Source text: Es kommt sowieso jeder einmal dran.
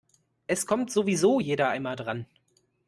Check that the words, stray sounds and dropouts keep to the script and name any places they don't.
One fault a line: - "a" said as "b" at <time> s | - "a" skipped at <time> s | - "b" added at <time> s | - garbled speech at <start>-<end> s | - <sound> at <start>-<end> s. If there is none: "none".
none